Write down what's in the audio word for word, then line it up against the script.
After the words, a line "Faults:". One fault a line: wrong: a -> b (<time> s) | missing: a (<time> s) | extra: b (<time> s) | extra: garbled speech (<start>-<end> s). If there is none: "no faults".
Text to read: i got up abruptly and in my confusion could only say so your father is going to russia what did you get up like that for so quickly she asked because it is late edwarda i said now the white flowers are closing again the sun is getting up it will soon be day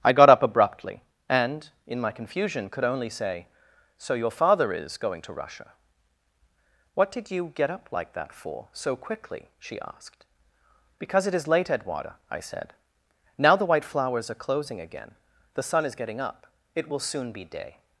i got up abruptly and in my confusion could only say so your father is going to russia what did you get up like that for so quickly she asked because it is late edwarda i said now the white flowers are closing again the sun is getting up it will soon be day
Faults:
no faults